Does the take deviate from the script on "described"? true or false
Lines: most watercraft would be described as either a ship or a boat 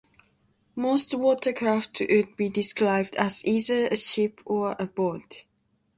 false